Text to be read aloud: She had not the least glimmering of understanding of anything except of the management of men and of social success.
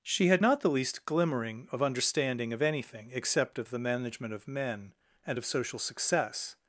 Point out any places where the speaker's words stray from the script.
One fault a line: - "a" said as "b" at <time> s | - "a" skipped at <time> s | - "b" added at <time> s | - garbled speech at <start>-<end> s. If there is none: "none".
none